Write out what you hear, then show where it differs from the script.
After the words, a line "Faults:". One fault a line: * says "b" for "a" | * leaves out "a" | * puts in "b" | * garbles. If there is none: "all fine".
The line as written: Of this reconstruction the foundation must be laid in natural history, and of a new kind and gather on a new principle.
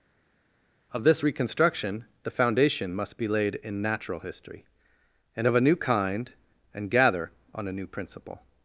Of this reconstruction the foundation must be laid in natural history, and of a new kind and gather on a new principle.
Faults:
all fine